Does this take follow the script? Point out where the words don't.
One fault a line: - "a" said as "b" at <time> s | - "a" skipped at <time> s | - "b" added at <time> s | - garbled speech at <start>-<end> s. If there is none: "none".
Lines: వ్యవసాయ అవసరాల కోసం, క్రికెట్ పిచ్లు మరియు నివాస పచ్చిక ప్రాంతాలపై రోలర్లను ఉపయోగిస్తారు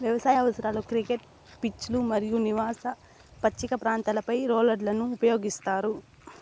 - "కోసం" skipped at 0.8 s